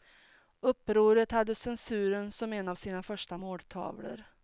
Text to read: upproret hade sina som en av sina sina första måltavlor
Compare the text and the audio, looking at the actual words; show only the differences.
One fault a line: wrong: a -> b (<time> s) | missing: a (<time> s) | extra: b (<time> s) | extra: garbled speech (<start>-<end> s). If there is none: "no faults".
wrong: sina -> censuren (1.6 s)
missing: sina (3.0 s)